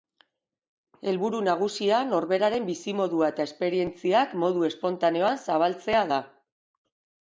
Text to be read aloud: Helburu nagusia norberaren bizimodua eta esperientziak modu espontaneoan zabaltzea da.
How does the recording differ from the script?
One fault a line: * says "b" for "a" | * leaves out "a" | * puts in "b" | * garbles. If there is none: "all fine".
all fine